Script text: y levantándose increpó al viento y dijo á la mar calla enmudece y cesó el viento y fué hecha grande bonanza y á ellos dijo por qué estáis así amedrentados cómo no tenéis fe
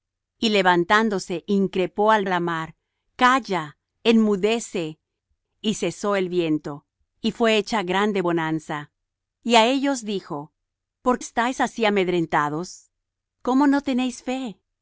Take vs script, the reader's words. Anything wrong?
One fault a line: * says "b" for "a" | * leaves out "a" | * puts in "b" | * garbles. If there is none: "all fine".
* leaves out "viento y dijo"
* leaves out "qué"